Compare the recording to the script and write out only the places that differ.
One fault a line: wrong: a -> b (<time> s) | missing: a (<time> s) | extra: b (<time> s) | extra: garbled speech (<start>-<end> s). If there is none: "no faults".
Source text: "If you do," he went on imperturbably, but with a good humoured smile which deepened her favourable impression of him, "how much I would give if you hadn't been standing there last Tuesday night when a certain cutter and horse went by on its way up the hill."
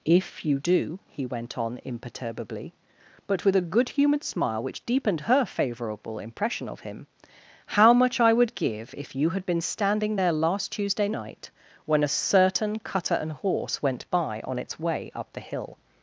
wrong: hadn't -> had (9.3 s)